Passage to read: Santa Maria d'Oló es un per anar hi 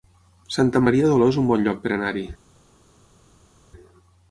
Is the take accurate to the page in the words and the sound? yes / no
no